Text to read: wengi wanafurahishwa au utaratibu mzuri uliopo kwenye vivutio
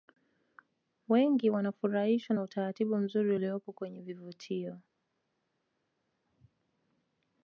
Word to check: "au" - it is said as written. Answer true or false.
false